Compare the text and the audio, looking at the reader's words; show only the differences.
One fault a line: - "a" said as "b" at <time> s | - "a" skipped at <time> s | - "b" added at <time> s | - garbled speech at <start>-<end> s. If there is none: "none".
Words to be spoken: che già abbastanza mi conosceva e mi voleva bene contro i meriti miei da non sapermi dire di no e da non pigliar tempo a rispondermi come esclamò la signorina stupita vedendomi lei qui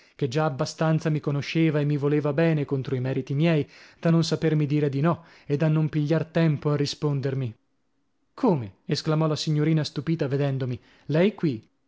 none